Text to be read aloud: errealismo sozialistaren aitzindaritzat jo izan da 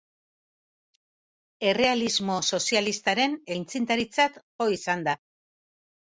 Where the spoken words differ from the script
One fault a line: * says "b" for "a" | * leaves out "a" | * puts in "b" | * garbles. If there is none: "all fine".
all fine